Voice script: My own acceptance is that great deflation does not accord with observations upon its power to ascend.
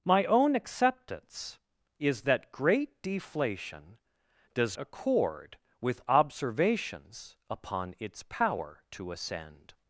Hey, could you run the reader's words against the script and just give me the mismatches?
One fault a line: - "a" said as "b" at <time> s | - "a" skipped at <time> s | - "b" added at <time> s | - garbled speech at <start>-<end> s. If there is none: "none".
- "not" skipped at 4.8 s